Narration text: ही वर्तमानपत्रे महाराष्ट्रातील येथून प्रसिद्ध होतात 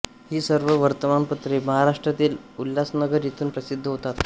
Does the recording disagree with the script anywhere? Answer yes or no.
yes